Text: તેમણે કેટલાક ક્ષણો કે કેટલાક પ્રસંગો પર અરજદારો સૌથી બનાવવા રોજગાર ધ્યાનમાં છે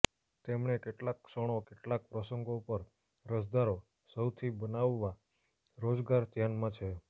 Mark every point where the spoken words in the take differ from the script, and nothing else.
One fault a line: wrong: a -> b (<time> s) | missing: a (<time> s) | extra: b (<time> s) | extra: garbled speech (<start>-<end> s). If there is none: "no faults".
missing: કે (1.6 s)